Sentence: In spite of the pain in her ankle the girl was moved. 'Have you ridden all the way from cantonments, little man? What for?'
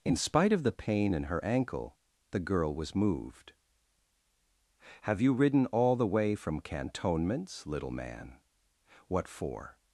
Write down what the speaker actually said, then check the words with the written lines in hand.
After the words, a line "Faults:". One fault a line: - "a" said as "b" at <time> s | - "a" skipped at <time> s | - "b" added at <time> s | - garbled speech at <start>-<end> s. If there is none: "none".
In spite of the pain in her ankle the girl was moved. 'Have you ridden all the way from cantonments, little man? What for?'
Faults:
none